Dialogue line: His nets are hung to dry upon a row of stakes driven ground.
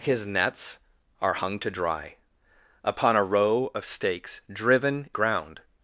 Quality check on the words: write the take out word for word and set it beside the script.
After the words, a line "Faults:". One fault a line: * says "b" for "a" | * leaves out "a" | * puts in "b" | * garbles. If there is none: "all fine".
His nets are hung to dry upon a row of stakes driven ground.
Faults:
all fine